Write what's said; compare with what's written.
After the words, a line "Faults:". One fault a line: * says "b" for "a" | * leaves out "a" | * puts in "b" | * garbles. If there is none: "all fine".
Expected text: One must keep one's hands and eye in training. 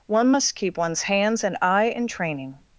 One must keep one's hands and eye in training.
Faults:
all fine